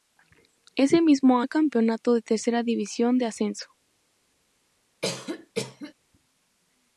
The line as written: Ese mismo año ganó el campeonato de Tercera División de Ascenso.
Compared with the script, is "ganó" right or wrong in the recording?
wrong